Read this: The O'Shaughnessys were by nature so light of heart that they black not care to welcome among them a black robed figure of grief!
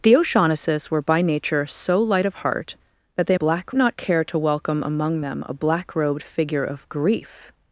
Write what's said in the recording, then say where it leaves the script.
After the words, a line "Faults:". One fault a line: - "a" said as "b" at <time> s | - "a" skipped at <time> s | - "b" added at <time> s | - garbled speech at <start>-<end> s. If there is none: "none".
The O'Shaughnessys were by nature so light of heart that they black not care to welcome among them a black robed figure of grief!
Faults:
none